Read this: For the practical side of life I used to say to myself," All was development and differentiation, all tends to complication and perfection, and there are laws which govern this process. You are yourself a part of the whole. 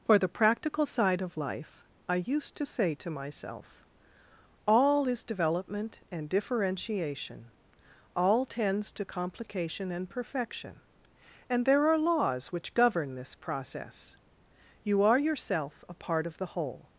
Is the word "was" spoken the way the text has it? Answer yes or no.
no